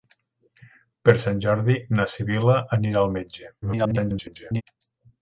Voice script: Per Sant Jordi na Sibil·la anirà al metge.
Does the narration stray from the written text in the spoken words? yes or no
yes